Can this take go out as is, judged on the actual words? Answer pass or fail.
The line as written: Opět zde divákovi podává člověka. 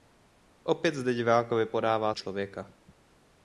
pass